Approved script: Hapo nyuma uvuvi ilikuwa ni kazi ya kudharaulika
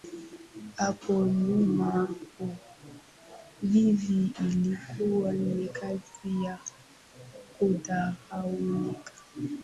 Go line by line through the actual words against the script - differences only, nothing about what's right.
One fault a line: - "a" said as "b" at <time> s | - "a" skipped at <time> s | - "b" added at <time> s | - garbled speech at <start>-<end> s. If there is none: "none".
none